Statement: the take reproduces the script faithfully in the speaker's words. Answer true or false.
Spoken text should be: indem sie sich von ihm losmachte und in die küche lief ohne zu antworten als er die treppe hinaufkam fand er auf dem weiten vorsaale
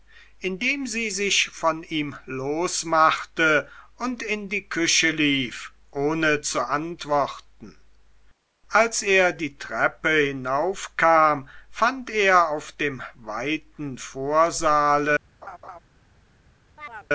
true